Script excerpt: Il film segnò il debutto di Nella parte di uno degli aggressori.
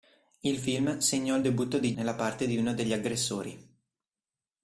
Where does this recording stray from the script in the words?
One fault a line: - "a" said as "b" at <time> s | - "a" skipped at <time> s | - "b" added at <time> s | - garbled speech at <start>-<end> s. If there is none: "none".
none